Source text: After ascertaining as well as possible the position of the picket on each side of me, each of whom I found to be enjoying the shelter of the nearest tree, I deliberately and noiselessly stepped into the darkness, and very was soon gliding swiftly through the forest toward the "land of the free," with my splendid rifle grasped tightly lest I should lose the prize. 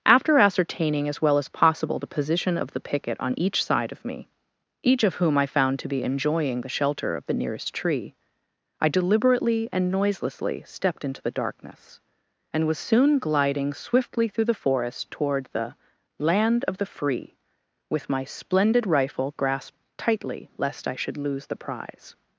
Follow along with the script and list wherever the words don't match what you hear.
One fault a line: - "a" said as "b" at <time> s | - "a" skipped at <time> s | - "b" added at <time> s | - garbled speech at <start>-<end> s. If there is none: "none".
- "very" skipped at 12.7 s